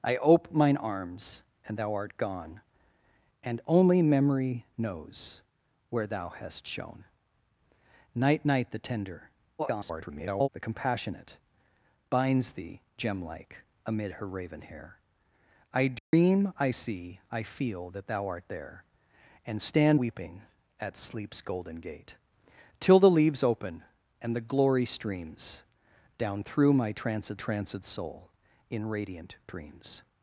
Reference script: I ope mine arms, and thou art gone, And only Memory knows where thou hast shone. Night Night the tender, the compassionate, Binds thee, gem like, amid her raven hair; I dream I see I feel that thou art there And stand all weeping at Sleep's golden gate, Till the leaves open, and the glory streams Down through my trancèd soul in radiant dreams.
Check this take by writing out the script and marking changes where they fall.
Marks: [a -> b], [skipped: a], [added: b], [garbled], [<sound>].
I ope mine arms, and thou art gone, And only Memory knows where thou hast shone. Night Night the tender, [garbled] the compassionate, Binds thee, gem like, amid her raven hair; I dream [dropout] I see I feel that thou art there And stand [skipped: all] weeping at Sleep's golden gate, Till the leaves open, and the glory streams Down through my trancèd [added: trancèd] soul in radiant dreams.